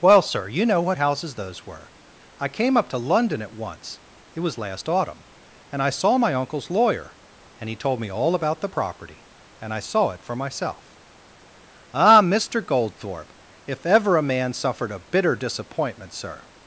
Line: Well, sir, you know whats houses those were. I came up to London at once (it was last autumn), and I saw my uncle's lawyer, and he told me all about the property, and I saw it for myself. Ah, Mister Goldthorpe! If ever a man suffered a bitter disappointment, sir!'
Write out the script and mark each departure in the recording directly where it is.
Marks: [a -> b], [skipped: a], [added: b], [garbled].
Well, sir, you know [whats -> what] houses those were. I came up to London at once (it was last autumn), and I saw my uncle's lawyer, and he told me all about the property, and I saw it for myself. Ah, Mister Goldthorpe! If ever a man suffered a bitter disappointment, sir!'